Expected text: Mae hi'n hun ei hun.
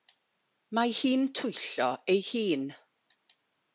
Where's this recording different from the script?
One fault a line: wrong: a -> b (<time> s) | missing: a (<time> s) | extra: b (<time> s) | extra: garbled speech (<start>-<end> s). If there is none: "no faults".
wrong: hun -> twyllo (1.4 s)